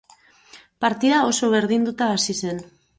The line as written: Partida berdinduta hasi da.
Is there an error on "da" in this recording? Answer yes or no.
yes